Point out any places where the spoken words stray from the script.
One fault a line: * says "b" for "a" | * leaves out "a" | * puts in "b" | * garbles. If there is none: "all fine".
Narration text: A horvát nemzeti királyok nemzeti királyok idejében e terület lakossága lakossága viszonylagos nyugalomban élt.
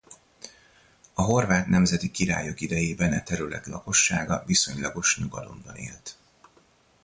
* leaves out "nemzeti királyok"
* leaves out "lakossága"